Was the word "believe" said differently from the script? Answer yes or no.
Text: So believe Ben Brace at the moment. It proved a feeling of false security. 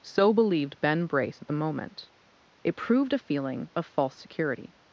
yes